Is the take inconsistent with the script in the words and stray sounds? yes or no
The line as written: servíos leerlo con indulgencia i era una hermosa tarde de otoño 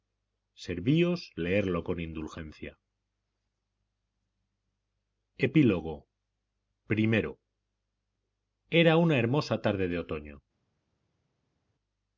no